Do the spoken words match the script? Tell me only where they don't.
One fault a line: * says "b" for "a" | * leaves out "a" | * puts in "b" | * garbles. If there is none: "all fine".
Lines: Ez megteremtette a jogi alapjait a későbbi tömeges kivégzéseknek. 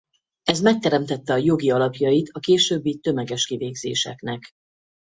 all fine